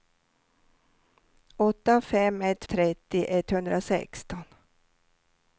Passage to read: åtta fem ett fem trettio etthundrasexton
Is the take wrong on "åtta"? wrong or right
right